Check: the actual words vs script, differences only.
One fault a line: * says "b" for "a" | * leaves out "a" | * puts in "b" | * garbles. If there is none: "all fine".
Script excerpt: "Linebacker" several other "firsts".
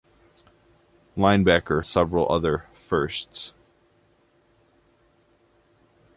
all fine